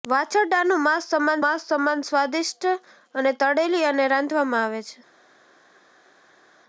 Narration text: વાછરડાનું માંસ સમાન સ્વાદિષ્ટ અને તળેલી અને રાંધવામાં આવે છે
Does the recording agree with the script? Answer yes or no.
no